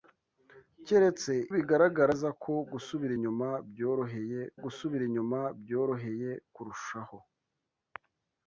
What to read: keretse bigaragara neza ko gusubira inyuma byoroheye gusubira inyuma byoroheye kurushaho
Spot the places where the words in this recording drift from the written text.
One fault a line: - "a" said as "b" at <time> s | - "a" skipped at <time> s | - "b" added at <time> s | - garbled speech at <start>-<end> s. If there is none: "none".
none